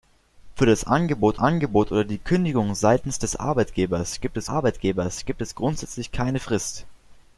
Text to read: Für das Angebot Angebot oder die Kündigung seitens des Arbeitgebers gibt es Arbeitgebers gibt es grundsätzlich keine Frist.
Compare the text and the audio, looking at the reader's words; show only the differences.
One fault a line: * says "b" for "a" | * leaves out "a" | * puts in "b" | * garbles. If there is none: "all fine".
all fine